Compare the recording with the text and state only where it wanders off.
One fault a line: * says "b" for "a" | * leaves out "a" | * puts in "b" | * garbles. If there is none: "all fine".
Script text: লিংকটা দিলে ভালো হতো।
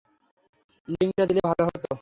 all fine